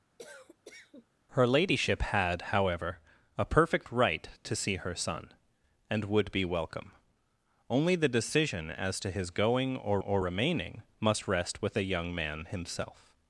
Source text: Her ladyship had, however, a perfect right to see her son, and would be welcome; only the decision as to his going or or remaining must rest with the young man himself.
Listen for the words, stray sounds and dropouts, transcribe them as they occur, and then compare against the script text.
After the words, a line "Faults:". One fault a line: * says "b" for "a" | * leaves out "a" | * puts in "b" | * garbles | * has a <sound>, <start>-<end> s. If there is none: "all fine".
Her ladyship had, however, a perfect right to see her son, and would be welcome; only the decision as to his going or or remaining must rest with the young man himself.
Faults:
* has a cough, 0.2-1.1 s